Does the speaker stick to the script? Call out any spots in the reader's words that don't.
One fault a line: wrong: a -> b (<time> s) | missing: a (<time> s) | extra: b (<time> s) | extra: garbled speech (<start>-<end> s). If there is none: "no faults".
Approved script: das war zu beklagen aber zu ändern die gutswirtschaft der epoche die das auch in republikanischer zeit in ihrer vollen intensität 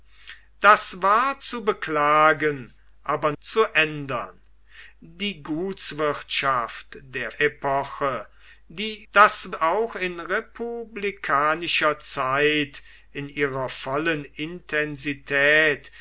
no faults